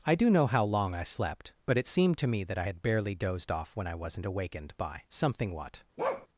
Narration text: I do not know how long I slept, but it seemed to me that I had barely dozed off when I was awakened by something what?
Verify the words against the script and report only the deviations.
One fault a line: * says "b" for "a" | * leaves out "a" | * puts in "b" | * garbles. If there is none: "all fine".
* leaves out "not"
* says "wasn't" for "was"